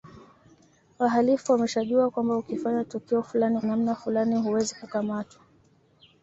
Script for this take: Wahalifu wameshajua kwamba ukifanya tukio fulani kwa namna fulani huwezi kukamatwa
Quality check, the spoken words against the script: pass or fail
fail